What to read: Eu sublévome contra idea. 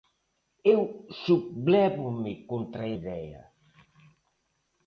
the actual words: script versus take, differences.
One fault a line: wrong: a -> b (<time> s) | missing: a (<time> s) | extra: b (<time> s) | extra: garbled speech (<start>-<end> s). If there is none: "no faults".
no faults